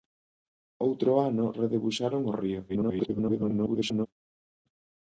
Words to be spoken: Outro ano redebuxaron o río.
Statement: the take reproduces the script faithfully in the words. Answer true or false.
false